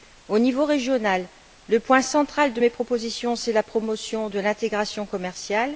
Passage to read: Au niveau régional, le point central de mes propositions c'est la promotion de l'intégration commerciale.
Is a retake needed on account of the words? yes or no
no